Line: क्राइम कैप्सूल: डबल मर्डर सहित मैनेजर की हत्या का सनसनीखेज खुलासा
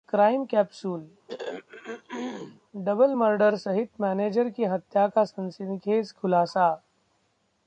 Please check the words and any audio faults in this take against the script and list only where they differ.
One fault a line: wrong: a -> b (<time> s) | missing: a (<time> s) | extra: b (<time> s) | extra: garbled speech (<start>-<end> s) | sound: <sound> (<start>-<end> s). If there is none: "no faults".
sound: throat clearing (1.3-2.6 s)